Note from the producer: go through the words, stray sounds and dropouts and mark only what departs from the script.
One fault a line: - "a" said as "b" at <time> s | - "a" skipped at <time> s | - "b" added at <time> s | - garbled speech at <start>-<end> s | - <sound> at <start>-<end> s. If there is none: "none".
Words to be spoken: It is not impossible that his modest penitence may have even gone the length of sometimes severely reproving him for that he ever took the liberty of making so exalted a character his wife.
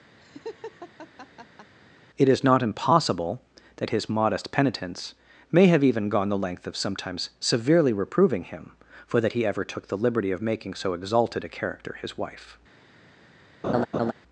- laugh at 0.2-1.7 s
- laugh at 13.6-14.1 s